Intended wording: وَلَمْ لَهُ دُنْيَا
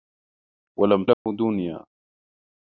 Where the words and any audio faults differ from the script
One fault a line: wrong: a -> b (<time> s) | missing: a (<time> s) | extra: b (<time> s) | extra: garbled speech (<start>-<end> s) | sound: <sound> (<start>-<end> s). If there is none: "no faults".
sound: dropout (1.1-1.3 s)